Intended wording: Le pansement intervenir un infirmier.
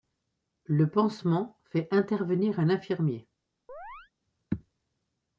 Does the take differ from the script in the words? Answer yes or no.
yes